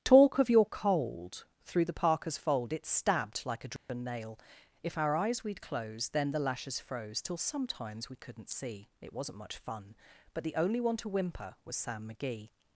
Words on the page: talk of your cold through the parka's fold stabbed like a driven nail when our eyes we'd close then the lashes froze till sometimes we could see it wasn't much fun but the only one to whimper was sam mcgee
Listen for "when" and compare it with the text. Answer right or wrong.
wrong